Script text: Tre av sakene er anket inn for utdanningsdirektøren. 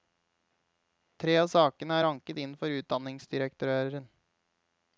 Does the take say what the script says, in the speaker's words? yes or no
yes